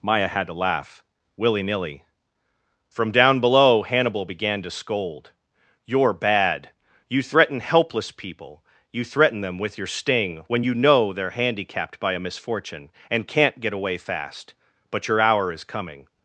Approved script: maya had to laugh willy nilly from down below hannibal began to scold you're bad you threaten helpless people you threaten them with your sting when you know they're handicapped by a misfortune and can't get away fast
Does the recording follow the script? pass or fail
fail